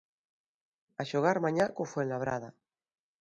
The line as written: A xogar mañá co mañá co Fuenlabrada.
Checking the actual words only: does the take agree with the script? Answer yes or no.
no